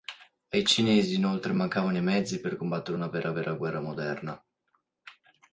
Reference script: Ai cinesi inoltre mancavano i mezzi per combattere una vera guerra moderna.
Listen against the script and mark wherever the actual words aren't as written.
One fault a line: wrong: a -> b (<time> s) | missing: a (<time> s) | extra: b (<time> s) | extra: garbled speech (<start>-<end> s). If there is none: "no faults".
extra: vera (3.3 s)